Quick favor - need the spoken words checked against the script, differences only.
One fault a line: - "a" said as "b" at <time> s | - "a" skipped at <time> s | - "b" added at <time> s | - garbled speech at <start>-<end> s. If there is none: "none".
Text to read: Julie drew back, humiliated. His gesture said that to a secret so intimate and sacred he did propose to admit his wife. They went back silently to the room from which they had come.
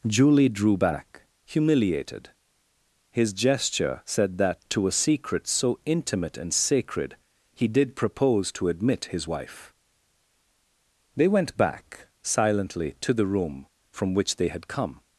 none